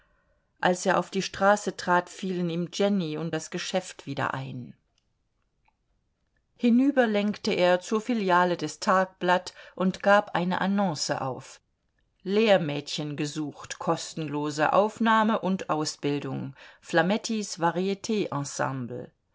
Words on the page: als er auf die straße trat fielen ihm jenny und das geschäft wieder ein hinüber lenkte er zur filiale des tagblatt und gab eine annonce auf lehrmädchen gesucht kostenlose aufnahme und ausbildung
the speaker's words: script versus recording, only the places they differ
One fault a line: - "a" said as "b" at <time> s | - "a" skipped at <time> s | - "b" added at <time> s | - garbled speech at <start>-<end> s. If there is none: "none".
none